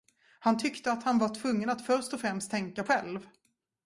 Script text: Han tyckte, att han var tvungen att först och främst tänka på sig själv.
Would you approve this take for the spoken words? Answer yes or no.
no